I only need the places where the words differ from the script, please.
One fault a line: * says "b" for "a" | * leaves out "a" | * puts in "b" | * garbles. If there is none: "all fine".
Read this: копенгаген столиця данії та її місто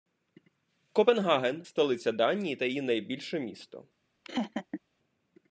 * puts in "найбільше"